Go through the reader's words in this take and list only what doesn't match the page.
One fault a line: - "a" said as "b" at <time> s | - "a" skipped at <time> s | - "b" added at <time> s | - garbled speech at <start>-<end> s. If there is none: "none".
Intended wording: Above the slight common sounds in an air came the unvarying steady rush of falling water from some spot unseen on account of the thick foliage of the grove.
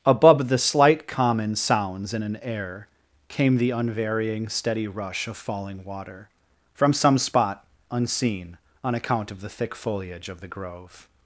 none